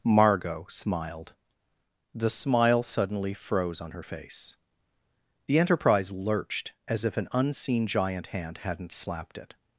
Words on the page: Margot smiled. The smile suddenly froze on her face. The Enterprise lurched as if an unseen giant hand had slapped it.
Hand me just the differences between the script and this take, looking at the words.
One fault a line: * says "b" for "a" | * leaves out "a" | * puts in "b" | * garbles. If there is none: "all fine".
* says "hadn't" for "had"